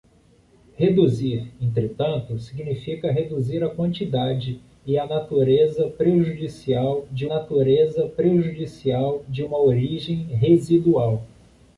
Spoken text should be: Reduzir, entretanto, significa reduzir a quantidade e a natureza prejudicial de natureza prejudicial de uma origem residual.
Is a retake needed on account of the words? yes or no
no